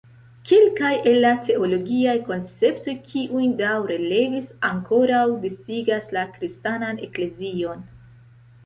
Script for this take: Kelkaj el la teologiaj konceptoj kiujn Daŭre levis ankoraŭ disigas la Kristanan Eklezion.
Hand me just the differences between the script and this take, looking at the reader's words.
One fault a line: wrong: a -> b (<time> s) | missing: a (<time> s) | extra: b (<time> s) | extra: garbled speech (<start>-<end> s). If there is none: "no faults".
no faults